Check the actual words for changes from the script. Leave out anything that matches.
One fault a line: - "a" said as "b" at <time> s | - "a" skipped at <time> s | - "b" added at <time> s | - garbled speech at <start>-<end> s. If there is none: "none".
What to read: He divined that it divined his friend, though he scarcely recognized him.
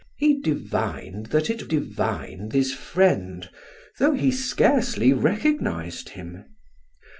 none